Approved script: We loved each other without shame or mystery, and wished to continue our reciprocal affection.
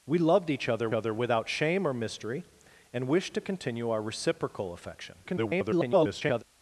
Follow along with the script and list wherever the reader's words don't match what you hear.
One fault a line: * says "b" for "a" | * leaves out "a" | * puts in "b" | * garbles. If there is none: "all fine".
* puts in "other"
* garbles